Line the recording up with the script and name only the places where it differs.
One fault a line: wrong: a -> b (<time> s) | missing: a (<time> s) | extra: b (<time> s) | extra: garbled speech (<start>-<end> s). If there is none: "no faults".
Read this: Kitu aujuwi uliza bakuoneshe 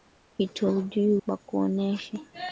missing: uliza (1.2 s)